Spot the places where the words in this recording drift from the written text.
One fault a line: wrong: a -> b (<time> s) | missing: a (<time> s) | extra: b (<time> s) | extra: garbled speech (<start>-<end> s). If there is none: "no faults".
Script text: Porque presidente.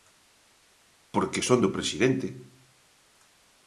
extra: son do (1.5 s)